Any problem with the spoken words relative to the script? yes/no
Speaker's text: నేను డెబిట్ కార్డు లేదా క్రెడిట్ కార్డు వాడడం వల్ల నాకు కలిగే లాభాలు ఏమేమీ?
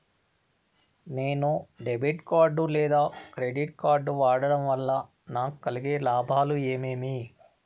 no